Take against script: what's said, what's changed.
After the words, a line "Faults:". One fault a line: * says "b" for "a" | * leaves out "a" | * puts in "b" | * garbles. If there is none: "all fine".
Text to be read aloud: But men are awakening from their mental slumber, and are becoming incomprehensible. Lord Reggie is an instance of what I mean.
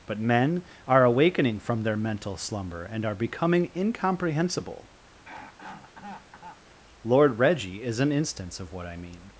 But men are awakening from their mental slumber, and are becoming incomprehensible. Lord Reggie is an instance of what I mean.
Faults:
all fine